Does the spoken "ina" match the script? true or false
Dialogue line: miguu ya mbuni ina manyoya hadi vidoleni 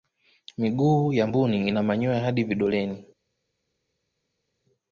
true